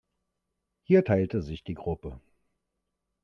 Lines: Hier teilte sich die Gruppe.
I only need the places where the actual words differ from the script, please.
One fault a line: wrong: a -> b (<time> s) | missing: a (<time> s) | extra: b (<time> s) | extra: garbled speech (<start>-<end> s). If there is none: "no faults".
no faults